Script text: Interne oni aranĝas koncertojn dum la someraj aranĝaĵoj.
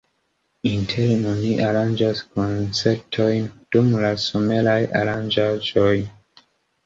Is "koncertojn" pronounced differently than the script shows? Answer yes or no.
no